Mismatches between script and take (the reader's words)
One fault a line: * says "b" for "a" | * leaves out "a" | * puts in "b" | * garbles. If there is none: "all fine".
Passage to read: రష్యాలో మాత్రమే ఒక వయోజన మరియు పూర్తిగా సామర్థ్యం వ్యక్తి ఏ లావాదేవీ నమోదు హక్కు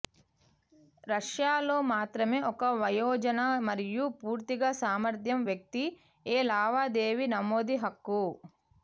all fine